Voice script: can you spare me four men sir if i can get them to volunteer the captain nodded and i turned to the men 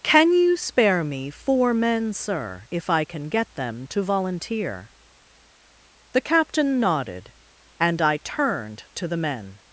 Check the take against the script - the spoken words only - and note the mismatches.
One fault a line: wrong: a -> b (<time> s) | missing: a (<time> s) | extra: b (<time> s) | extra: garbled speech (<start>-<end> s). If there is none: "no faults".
no faults